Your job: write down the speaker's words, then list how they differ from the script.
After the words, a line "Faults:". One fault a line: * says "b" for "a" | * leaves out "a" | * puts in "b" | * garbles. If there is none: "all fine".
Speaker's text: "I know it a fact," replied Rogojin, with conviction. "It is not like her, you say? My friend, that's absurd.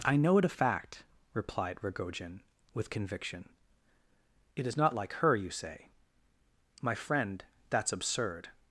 "I know it a fact," replied Rogojin, with conviction. "It is not like her, you say? My friend, that's absurd.
Faults:
all fine